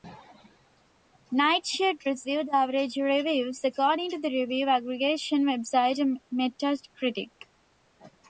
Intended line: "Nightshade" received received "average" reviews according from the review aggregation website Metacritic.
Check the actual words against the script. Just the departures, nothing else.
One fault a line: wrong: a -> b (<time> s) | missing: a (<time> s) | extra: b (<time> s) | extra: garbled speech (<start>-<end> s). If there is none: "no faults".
missing: received (2.5 s)
wrong: from -> to (4.1 s)